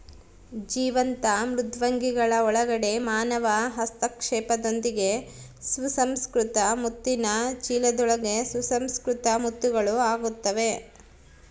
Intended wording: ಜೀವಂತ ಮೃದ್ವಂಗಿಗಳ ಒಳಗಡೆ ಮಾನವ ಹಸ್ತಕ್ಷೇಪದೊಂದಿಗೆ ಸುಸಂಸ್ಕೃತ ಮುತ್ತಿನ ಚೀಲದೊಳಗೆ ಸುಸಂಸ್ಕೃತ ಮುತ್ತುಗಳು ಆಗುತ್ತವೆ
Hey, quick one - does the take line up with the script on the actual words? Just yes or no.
yes